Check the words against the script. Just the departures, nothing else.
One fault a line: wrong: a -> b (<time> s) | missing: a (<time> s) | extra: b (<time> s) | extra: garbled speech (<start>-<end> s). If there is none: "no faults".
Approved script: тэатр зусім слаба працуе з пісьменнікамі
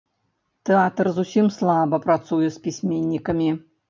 no faults